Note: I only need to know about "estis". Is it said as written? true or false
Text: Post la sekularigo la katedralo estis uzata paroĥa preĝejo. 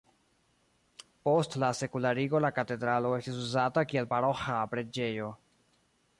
true